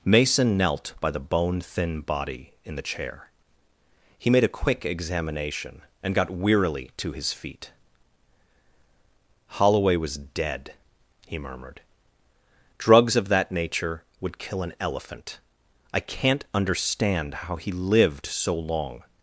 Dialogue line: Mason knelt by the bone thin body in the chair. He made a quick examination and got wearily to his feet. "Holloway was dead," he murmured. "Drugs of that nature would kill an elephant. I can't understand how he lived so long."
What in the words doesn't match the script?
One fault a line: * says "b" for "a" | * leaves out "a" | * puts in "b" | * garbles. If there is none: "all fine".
all fine